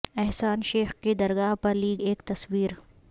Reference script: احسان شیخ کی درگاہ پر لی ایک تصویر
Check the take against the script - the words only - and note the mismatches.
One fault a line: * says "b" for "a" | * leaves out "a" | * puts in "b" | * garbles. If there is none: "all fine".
all fine